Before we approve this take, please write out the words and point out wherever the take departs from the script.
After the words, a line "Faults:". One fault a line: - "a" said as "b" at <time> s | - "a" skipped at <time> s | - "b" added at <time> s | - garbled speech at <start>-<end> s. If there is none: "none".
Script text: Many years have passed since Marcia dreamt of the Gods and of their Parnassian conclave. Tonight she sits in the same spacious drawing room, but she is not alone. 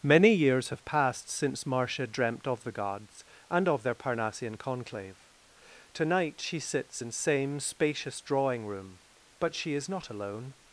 Many years have passed since Marcia dreamt of the Gods and of their Parnassian conclave. Tonight she sits in same spacious drawing room, but she is not alone.
Faults:
- "the" skipped at 7.1 s